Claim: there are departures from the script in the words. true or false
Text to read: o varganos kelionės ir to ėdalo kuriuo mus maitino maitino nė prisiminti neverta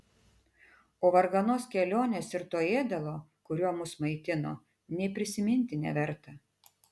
true